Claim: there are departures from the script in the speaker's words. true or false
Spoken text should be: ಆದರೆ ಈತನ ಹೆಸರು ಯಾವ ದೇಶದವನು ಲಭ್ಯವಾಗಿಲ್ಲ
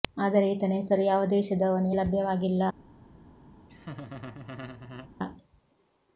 false